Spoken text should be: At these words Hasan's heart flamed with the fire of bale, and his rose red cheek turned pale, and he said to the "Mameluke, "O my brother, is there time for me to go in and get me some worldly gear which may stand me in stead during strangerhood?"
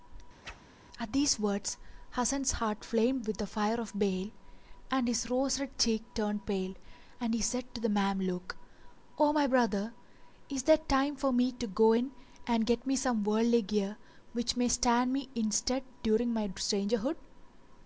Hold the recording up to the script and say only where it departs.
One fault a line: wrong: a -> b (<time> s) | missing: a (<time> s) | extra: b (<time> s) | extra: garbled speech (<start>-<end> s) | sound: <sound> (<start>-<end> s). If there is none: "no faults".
sound: whoosh (0.4-0.6 s)
extra: my (16.3 s)